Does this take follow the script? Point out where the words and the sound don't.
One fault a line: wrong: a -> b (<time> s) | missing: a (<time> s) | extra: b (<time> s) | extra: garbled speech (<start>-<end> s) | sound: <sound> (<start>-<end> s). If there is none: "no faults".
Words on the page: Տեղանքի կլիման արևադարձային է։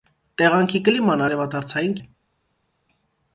no faults